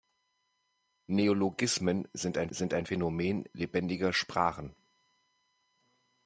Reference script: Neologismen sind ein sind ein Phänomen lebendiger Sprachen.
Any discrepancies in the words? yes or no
no